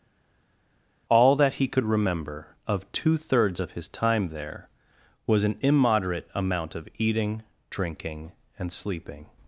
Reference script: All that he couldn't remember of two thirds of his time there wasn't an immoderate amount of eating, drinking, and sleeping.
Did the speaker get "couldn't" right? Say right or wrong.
wrong